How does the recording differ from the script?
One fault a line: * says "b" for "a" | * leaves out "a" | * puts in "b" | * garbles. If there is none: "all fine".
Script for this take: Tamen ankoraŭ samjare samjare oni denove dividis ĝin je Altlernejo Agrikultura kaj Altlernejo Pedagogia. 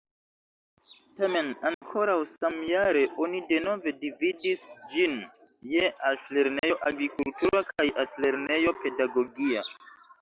* leaves out "samjare"